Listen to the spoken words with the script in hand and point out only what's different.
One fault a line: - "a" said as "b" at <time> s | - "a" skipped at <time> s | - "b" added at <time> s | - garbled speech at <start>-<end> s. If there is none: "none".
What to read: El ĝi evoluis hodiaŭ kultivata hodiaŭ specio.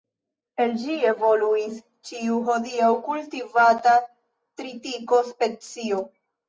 - "ĉiu" added at 2.1 s
- "hodiaŭ" said as "tritiko" at 4.6 s